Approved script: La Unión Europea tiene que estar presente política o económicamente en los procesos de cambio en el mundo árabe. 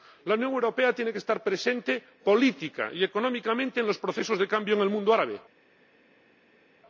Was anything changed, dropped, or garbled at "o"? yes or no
yes